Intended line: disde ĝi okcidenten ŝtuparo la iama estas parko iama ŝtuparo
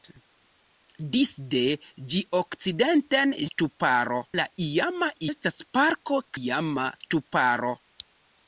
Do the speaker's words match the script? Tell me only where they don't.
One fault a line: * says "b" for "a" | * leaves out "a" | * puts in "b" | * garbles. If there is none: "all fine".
all fine